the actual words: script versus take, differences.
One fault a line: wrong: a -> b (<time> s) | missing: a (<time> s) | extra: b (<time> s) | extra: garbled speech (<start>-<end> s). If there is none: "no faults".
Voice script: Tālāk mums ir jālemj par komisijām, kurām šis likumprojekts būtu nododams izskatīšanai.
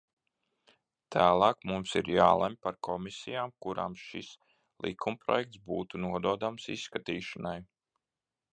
no faults